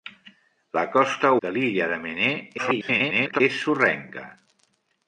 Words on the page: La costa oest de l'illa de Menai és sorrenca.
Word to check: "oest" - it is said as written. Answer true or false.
false